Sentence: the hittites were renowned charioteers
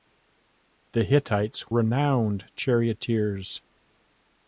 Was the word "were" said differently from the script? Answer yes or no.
yes